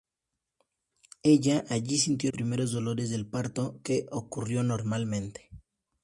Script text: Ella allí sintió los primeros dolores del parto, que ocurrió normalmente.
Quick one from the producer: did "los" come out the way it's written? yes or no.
no